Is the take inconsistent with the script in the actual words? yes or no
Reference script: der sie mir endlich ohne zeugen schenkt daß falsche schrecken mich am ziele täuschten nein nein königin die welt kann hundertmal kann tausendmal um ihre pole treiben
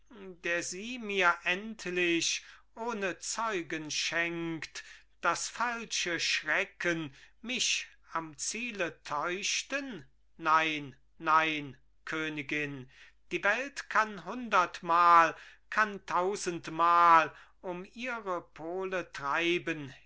no